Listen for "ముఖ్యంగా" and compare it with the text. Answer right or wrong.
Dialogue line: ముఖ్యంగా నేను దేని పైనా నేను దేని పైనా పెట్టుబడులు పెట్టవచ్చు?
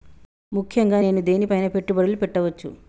right